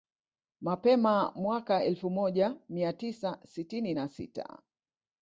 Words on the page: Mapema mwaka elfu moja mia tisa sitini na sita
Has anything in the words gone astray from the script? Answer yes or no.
no